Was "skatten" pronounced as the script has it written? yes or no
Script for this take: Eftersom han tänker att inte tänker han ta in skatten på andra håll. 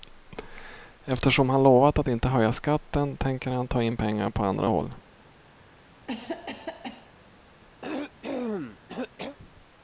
no